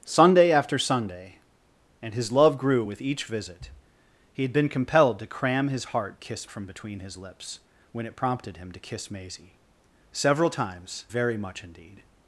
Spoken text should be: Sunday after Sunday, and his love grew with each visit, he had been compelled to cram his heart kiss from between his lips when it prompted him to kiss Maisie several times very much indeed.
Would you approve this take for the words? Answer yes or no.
yes